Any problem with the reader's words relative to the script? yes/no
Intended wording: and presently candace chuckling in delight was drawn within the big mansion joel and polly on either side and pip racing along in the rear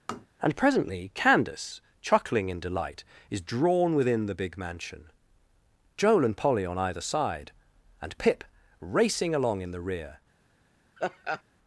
yes